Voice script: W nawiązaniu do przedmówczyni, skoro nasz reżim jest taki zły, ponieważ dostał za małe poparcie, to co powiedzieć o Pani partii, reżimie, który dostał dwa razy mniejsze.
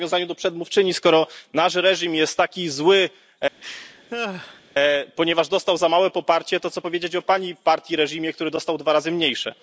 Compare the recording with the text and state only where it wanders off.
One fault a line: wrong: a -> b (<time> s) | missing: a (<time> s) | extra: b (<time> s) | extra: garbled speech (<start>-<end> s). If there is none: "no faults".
no faults